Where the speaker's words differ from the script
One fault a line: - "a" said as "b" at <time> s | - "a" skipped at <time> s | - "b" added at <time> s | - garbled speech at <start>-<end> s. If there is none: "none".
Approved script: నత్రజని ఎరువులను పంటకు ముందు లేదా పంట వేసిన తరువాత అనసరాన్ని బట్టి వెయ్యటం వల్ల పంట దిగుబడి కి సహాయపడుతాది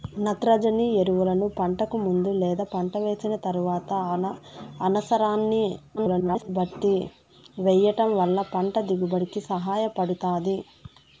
- garbled speech at 6.0-6.5 s